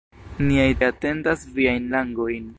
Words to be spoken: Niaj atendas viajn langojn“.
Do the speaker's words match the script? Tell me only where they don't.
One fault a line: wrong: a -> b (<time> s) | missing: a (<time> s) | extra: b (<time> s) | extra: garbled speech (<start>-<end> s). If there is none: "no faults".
no faults